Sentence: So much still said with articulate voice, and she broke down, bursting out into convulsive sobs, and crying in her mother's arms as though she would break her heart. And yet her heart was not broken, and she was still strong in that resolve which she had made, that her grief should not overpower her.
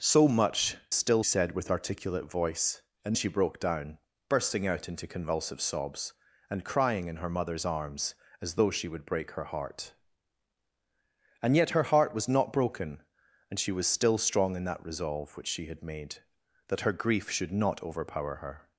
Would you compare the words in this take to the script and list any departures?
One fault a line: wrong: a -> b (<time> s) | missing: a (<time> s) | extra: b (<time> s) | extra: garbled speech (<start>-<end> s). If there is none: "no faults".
no faults